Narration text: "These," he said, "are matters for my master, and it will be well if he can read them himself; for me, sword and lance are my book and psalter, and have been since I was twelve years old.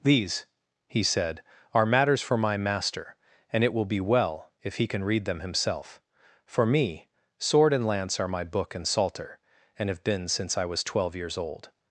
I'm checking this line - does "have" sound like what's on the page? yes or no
yes